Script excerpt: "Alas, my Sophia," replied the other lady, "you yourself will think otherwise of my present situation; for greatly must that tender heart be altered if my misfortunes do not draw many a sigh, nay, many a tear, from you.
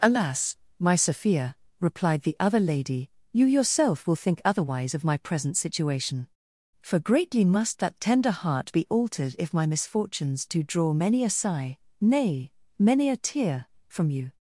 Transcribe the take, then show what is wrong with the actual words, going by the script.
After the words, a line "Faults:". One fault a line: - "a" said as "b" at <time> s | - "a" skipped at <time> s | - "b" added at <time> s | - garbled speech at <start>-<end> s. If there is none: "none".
"Alas, my Sophia," replied the other lady, "you yourself will think otherwise of my present situation; for greatly must that tender heart be altered if my misfortunes do draw many a sigh, nay, many a tear, from you.
Faults:
- "not" skipped at 10.6 s